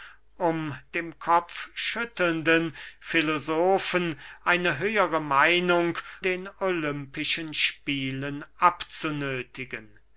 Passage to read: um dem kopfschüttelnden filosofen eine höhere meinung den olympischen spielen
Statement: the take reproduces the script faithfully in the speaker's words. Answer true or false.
true